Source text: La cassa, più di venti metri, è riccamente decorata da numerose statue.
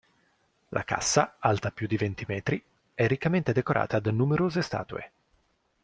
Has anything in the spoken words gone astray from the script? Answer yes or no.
yes